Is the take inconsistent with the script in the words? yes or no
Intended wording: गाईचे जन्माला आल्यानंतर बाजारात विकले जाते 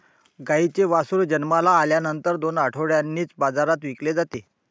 yes